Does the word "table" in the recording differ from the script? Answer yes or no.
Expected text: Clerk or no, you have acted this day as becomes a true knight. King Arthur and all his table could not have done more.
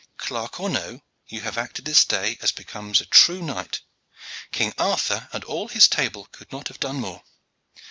no